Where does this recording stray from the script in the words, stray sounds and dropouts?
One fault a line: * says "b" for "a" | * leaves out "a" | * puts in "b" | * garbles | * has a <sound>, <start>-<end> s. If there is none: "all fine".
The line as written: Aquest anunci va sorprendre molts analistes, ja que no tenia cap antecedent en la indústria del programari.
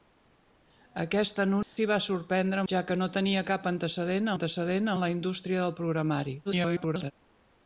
* has a dropout, 1.6-1.8 s
* leaves out "molts analistes"
* puts in "antecedent"
* garbles